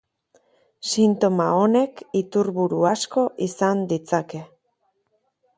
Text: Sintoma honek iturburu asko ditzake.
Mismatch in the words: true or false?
true